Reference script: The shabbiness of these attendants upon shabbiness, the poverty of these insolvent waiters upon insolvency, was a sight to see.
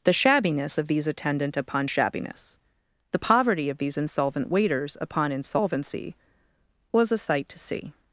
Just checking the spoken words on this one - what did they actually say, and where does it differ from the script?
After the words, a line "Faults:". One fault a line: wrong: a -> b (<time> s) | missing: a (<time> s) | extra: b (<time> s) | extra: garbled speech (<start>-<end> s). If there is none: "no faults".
The shabbiness of these attendant upon shabbiness, the poverty of these insolvent waiters upon insolvency, was a sight to see.
Faults:
wrong: attendants -> attendant (1.1 s)